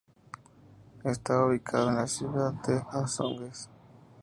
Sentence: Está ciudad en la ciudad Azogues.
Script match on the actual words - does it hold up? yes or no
no